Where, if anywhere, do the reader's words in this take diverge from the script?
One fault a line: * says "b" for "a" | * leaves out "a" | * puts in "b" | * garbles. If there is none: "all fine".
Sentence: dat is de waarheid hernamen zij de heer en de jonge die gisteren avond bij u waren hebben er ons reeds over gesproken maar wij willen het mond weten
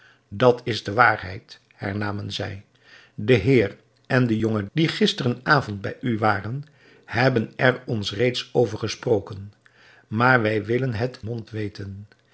all fine